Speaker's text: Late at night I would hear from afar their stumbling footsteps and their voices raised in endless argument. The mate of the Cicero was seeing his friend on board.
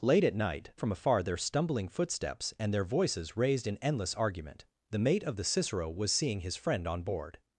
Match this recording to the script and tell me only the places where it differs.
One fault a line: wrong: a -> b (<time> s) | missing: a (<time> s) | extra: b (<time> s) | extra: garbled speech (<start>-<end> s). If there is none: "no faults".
missing: I would hear (0.7 s)